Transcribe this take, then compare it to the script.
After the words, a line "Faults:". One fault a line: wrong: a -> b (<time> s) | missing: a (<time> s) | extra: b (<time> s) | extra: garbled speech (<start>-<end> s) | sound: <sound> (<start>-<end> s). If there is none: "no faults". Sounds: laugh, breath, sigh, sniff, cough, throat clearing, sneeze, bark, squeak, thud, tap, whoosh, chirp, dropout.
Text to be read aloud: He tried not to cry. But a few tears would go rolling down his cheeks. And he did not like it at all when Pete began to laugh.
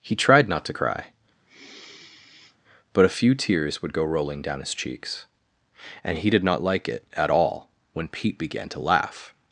He tried not to cry. But a few tears would go rolling down his cheeks. And he did not like it at all when Pete began to laugh.
Faults:
sound: sigh (1.5-2.6 s)